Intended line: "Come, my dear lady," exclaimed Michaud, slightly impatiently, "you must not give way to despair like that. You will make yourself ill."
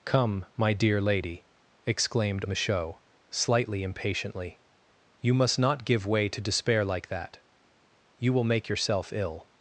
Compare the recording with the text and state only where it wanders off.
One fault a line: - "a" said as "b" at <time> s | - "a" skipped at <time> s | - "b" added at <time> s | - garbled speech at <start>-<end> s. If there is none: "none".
none